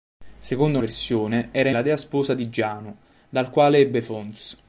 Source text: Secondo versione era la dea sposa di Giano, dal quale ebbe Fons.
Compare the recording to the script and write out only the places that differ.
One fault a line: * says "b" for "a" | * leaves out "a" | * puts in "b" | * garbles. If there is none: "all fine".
all fine